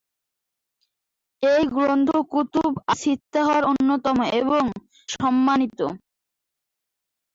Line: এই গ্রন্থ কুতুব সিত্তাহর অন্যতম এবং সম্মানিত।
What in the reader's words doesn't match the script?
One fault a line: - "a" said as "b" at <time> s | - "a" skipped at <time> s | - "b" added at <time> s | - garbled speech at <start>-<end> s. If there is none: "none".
none